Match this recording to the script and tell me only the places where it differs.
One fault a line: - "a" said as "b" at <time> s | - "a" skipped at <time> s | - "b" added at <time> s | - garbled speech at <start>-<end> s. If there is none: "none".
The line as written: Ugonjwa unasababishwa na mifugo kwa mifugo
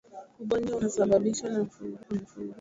none